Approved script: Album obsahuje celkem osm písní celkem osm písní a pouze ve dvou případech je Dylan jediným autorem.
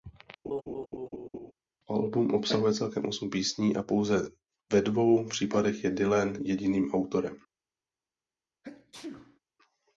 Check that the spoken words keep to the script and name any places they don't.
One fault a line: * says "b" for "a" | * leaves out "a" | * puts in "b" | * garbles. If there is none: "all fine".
* leaves out "celkem osm písní"